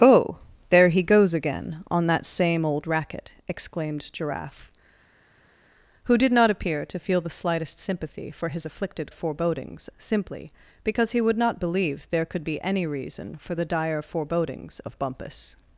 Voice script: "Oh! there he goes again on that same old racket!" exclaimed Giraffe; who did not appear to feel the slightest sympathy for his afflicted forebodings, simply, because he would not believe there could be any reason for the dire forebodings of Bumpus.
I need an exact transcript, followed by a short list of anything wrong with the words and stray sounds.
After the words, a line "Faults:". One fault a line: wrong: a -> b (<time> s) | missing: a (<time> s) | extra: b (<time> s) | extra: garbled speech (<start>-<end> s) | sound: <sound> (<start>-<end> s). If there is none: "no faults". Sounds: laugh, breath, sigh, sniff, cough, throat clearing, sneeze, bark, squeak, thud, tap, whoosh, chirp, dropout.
"Oh! there he goes again on that same old racket!" exclaimed Giraffe; who did not appear to feel the slightest sympathy for his afflicted forebodings, simply, because he would not believe there could be any reason for the dire forebodings of Bumpus.
Faults:
no faults